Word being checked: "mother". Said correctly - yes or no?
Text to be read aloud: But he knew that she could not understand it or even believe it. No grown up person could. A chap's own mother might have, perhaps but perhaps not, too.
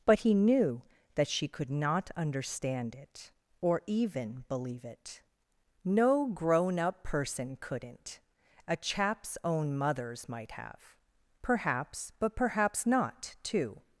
no